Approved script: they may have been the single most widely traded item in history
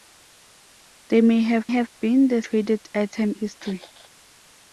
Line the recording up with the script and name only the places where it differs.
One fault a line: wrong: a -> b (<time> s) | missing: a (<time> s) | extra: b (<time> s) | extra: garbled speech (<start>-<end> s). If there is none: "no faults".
extra: have (1.7 s)
missing: single most widely (2.4 s)
missing: in (3.4 s)